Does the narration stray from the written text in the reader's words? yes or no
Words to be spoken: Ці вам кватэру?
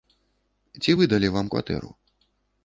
yes